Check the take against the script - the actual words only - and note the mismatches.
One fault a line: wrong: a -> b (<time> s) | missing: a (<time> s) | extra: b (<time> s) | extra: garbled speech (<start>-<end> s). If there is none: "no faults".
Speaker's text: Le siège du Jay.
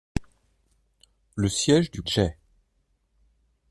no faults